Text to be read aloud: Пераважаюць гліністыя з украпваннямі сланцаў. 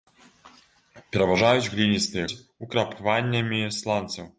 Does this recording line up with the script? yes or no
yes